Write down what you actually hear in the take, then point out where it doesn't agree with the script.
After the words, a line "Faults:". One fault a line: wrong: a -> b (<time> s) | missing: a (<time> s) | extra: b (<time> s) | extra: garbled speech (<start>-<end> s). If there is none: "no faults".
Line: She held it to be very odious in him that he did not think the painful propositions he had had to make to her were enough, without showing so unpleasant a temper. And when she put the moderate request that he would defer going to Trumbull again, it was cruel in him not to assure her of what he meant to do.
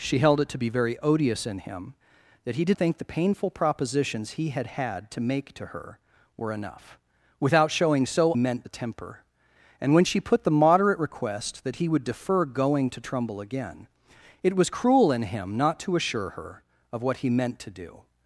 She held it to be very odious in him that he did think the painful propositions he had had to make to her were enough, without showing so meant a temper. And when she put the moderate request that he would defer going to Trumbull again, it was cruel in him not to assure her of what he meant to do.
Faults:
missing: not (2.8 s)
wrong: unpleasant -> meant (8.3 s)